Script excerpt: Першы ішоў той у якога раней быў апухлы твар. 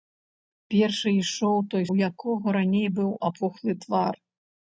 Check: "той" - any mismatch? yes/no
no